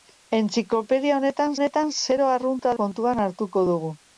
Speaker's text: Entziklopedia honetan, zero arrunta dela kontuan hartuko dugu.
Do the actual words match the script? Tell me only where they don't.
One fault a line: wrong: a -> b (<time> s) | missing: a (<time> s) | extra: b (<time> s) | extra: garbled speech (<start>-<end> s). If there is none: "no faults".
extra: honetan (1.6 s)
missing: dela (2.8 s)